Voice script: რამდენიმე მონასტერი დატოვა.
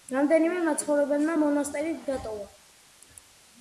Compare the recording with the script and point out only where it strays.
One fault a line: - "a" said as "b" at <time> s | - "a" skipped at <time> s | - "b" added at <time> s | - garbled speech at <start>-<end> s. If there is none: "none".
- "მაცხოვრებელმა" added at 0.7 s